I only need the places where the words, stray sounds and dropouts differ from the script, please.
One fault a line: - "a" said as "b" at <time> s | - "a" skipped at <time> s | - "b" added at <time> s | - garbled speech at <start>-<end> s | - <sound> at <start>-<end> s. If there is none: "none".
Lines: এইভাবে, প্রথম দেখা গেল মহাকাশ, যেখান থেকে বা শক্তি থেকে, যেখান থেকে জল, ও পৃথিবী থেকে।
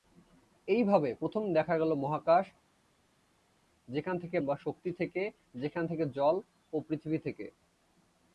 none